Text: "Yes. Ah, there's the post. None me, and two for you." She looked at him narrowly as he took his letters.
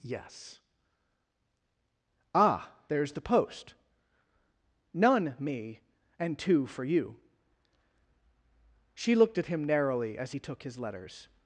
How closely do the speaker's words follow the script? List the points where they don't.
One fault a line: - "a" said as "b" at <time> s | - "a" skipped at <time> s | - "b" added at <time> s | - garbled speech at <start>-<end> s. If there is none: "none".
none